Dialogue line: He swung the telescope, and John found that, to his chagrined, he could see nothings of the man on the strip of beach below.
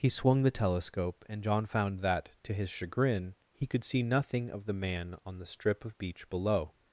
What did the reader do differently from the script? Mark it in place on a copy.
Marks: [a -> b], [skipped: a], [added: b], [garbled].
He swung the telescope, and John found that, to his [chagrined, -> chagrin] he could see [nothings -> nothing] of the man on the strip of beach below.